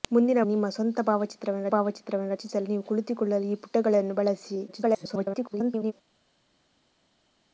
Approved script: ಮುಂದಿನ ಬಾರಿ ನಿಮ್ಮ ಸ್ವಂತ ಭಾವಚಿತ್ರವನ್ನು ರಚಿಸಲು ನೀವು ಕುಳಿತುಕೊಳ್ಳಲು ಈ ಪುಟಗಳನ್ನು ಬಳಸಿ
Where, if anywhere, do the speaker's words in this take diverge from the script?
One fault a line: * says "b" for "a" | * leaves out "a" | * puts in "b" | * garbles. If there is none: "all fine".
* leaves out "ಬಾರಿ"
* puts in "ಭಾವಚಿತ್ರವನ್ನು"
* garbles